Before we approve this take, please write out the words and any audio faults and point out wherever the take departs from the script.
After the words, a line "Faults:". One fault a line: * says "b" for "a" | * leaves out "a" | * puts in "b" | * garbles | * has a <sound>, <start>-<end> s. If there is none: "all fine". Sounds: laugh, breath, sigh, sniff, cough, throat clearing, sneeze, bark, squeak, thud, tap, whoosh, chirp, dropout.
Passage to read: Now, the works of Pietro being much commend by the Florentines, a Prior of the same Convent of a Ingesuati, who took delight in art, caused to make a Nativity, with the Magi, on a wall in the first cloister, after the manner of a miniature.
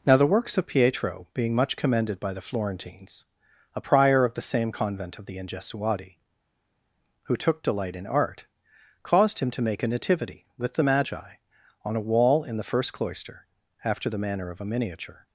Now, the works of Pietro being much commended by the Florentines, a Prior of the same Convent of the Ingesuati, who took delight in art, caused him to make a Nativity, with the Magi, on a wall in the first cloister, after the manner of a miniature.
Faults:
* says "commended" for "commend"
* says "the" for "a"
* puts in "him"